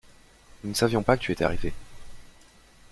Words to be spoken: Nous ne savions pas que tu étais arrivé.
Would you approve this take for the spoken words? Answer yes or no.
yes